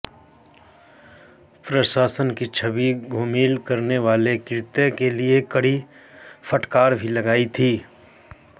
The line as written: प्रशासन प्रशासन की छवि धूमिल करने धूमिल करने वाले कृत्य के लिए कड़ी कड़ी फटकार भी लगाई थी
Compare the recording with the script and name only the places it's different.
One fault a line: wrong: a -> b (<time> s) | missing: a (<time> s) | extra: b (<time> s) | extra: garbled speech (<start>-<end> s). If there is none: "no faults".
missing: प्रशासन (2.3 s)
missing: धूमिल करने (4.0 s)
missing: कड़ी (5.8 s)